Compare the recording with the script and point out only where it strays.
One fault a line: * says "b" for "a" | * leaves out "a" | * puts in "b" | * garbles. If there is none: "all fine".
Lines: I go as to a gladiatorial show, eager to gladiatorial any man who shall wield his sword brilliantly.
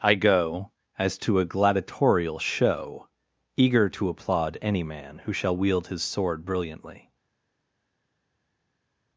* says "applaud" for "gladiatorial"